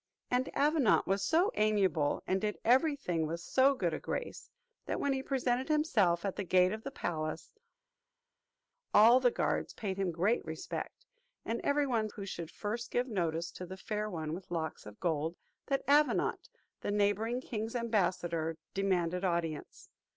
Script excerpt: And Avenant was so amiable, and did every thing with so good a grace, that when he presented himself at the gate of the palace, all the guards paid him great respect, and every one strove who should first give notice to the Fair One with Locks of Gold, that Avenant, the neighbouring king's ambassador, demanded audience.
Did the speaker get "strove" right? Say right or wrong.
wrong